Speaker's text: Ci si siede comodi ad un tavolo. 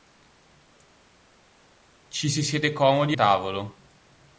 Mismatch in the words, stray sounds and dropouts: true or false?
true